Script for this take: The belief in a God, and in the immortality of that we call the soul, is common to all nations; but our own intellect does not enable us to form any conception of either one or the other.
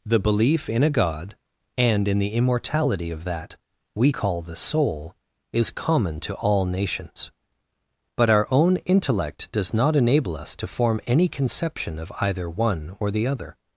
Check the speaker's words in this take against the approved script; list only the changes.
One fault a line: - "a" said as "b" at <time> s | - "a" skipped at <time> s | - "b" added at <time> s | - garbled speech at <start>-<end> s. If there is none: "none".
none